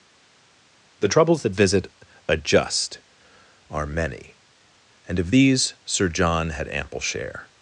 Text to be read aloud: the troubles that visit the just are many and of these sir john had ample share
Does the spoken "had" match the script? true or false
true